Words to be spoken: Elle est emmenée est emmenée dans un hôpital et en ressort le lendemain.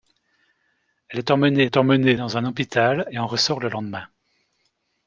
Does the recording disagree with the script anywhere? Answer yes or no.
no